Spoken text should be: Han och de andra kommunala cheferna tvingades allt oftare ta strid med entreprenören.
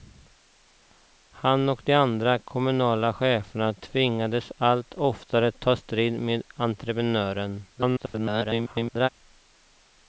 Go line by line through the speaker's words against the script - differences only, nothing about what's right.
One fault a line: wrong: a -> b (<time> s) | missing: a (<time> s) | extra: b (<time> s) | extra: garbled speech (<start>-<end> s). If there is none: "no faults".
extra: garbled speech (7.7-9.1 s)